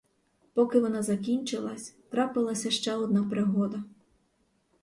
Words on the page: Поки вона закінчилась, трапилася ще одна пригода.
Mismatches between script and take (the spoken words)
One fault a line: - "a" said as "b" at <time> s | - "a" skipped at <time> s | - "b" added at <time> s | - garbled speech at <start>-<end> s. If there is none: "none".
none